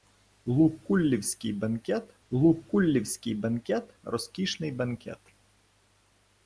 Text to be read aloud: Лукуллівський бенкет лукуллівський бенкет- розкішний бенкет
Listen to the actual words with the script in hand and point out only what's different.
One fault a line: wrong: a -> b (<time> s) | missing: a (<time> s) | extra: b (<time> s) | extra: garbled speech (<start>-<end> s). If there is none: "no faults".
no faults